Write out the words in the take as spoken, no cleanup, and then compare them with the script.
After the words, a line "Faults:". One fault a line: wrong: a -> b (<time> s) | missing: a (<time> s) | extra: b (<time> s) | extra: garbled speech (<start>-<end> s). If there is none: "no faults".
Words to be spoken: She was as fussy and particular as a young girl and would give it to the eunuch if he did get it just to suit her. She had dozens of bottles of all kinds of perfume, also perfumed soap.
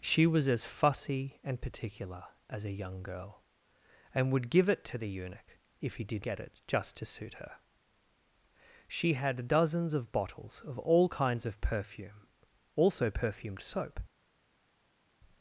She was as fussy and particular as a young girl and would give it to the eunuch if he did get it just to suit her. She had dozens of bottles of all kinds of perfume, also perfumed soap.
Faults:
no faults